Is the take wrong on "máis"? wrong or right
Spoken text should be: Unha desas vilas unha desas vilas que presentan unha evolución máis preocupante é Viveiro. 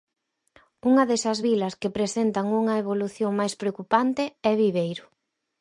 right